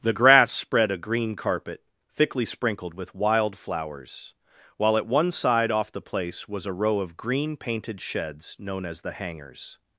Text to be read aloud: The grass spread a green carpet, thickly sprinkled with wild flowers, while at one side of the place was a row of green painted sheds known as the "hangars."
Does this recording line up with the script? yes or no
no